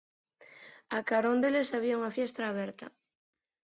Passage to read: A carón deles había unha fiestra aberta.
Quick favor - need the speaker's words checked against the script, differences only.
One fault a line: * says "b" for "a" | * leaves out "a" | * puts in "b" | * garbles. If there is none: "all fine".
all fine